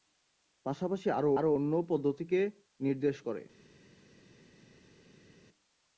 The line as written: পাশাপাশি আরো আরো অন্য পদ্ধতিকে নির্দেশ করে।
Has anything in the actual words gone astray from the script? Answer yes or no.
no